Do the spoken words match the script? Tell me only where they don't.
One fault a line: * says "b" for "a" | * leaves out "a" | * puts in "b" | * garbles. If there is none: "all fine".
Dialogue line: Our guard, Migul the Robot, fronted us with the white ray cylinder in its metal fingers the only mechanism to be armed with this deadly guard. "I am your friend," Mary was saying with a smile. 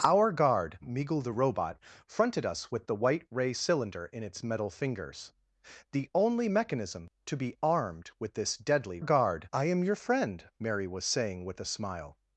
all fine